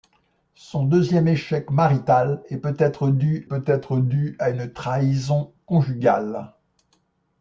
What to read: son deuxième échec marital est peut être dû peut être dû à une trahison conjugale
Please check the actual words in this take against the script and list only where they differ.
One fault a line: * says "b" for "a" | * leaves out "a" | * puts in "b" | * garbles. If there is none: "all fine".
all fine